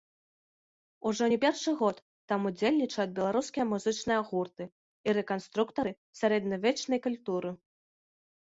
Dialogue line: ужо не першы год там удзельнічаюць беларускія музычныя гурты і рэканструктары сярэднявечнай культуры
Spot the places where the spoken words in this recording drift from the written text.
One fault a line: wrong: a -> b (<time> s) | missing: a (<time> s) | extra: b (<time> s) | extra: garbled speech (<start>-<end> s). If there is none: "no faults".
no faults